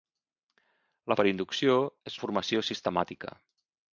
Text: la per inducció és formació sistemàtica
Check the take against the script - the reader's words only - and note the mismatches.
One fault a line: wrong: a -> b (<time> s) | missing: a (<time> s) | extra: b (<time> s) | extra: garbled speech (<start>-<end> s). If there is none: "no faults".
no faults